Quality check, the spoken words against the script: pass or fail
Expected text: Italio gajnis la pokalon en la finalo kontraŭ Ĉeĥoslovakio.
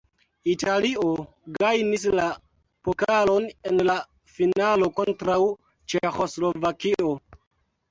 pass